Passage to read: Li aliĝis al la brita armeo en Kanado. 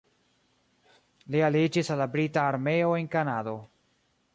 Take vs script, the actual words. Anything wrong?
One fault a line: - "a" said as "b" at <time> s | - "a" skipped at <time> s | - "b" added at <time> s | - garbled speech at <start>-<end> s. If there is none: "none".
none